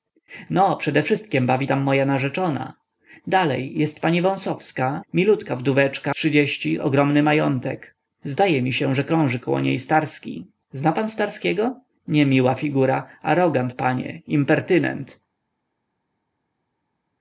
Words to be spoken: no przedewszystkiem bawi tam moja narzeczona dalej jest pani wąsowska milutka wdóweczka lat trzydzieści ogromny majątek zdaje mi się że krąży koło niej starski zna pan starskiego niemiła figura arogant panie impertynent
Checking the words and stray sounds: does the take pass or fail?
fail